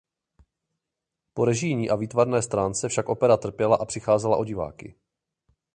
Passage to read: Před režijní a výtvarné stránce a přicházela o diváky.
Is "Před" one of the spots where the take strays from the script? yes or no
yes